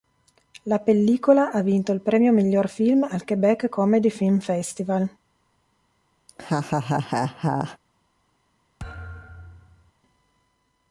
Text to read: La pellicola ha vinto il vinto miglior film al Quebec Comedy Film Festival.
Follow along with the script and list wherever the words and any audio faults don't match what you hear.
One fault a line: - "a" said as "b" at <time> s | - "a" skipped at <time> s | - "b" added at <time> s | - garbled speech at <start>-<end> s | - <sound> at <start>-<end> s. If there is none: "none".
- "vinto" said as "premio" at 2.0 s
- laugh at 6.3-7.8 s
- thud at 8.8-9.9 s